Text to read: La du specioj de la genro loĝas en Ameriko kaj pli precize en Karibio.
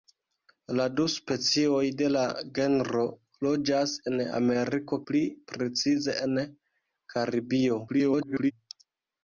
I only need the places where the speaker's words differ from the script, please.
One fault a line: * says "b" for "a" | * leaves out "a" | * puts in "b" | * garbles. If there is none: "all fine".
* leaves out "kaj"
* garbles